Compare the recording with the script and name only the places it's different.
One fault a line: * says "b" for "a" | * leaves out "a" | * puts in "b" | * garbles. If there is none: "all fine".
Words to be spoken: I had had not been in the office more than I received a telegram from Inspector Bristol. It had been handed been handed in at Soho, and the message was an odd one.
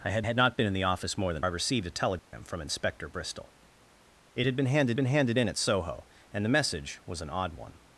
all fine